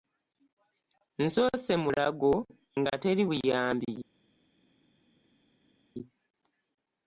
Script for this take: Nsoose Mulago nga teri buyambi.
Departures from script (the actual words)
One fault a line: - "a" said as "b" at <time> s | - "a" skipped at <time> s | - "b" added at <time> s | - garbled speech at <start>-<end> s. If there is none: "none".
none